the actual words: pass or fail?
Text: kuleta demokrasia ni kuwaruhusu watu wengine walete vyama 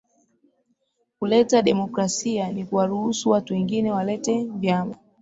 pass